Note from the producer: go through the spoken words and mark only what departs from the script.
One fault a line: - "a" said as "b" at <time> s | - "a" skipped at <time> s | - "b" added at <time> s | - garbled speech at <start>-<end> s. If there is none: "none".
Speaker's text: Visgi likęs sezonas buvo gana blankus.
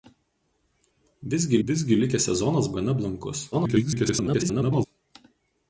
- "visgi" added at 1.7 s
- "buvo" skipped at 2.7 s
- garbled speech at 3.5-4.9 s